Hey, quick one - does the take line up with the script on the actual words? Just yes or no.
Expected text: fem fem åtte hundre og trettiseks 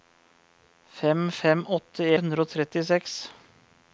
yes